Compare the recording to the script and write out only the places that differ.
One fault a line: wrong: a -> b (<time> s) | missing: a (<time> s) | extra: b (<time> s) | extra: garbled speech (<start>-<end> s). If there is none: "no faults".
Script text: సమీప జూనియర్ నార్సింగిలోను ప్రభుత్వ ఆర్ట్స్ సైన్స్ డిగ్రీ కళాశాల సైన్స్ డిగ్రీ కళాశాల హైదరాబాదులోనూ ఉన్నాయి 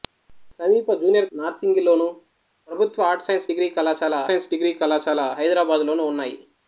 no faults